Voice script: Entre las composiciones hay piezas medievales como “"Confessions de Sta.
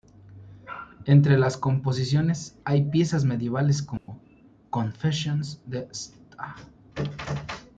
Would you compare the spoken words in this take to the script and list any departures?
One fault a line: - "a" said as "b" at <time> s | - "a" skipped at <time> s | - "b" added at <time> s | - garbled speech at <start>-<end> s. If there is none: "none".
none